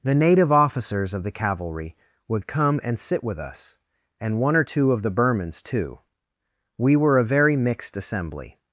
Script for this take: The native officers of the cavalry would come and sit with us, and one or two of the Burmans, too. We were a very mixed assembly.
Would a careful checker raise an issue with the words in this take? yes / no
no